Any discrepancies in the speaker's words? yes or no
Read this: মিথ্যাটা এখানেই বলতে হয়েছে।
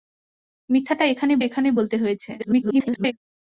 yes